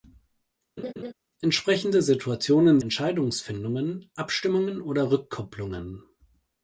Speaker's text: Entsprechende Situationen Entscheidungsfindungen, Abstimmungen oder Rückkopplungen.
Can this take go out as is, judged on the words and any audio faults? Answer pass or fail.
fail